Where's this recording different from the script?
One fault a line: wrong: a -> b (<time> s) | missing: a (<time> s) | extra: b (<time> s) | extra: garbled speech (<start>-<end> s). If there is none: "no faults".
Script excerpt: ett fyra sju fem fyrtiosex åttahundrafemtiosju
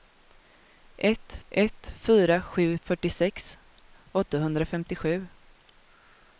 extra: ett (1.5 s)
missing: fem (2.8 s)